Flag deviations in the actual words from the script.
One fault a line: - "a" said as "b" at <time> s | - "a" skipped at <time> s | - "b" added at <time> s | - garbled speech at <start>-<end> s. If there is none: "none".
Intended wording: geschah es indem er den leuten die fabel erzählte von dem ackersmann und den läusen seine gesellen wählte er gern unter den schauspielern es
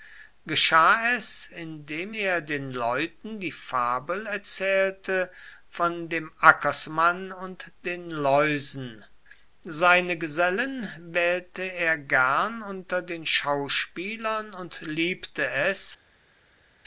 - "und liebte" added at 14.5 s